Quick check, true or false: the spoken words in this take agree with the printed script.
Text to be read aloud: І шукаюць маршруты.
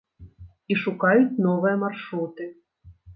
false